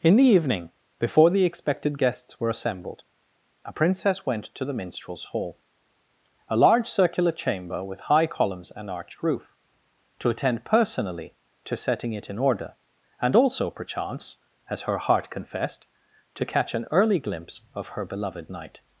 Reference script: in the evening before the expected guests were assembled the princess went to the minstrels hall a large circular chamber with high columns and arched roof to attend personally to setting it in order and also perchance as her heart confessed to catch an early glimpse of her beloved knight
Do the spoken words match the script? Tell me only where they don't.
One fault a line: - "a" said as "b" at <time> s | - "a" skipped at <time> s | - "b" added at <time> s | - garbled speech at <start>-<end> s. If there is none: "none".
- "the" said as "a" at 3.6 s